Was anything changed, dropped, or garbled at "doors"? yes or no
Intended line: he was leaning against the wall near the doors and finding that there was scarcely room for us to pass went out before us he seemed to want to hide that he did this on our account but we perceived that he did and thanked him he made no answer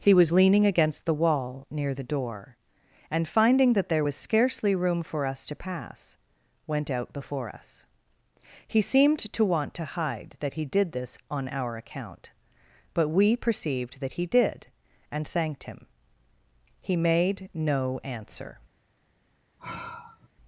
yes